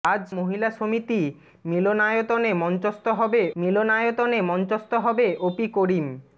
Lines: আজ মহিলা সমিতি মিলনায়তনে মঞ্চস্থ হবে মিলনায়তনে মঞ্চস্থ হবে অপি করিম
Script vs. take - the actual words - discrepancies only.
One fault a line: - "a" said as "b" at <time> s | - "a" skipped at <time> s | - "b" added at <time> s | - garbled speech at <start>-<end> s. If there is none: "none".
none